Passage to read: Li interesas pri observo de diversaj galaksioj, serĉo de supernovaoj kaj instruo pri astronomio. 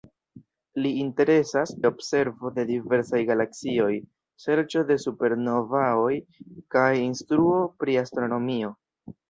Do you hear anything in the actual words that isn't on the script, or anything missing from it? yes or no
yes